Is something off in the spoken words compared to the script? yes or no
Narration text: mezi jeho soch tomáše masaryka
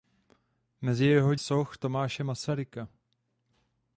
no